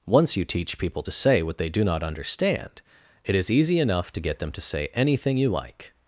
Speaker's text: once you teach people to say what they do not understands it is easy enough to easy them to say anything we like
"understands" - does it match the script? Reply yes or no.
no